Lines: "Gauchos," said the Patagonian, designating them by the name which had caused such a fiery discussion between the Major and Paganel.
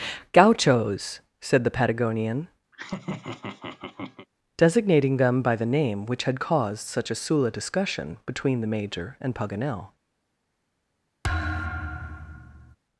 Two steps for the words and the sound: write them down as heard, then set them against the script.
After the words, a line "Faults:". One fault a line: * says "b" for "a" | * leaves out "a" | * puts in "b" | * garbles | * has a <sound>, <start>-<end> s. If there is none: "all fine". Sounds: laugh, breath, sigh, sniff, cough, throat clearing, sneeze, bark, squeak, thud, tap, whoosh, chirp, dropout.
"Gauchos," said the Patagonian, designating them by the name which had caused such a sula discussion between the Major and Paganel.
Faults:
* has a laugh, 2.7-4.3 s
* says "sula" for "fiery"
* has a thud, 11.2-12.8 s